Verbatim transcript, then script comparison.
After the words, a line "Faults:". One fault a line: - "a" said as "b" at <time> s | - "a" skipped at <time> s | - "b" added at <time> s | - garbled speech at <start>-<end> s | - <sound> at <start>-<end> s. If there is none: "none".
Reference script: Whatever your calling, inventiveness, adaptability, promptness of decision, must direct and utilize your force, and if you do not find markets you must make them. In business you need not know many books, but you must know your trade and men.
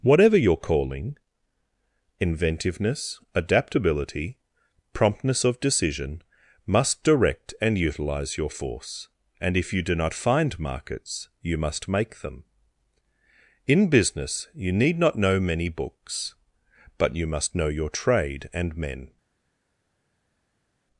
Whatever your calling, inventiveness, adaptability, promptness of decision, must direct and utilize your force, and if you do not find markets you must make them. In business you need not know many books, but you must know your trade and men.
Faults:
none